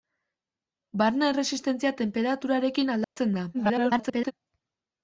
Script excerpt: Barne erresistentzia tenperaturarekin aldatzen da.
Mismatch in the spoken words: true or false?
true